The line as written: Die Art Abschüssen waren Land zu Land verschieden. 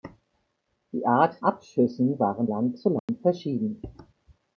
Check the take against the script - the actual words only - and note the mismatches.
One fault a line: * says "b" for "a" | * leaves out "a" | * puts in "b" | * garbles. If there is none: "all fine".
all fine